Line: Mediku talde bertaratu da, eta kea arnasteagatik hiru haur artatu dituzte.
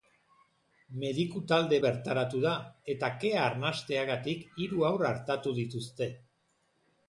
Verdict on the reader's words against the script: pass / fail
pass